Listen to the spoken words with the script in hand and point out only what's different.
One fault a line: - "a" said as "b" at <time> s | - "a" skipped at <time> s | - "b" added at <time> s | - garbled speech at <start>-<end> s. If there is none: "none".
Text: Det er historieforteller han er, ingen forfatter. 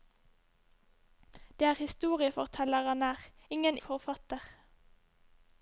none